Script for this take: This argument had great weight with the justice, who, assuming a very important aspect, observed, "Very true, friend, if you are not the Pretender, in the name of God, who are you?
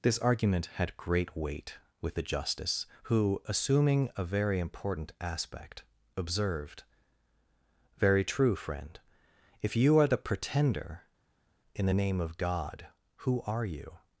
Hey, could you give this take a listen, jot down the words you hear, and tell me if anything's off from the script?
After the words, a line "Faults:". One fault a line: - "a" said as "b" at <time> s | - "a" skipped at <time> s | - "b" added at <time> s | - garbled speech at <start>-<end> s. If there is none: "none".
This argument had great weight with the justice, who, assuming a very important aspect, observed, "Very true, friend, if you are the Pretender, in the name of God, who are you?
Faults:
- "not" skipped at 10.1 s